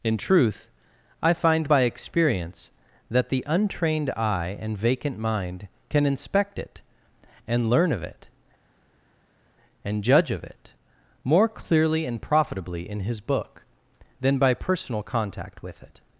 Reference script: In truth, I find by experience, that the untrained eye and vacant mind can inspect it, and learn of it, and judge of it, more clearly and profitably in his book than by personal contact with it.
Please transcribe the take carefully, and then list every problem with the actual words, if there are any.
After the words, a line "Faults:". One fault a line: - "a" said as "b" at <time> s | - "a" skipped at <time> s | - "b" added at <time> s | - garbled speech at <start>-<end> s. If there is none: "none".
In truth, I find by experience, that the untrained eye and vacant mind can inspect it, and learn of it, and judge of it, more clearly and profitably in his book than by personal contact with it.
Faults:
none